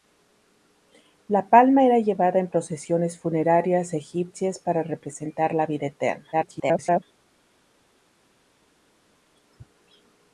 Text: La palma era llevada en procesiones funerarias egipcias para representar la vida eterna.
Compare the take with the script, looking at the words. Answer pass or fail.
fail